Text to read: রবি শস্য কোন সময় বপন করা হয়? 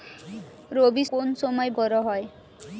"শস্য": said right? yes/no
no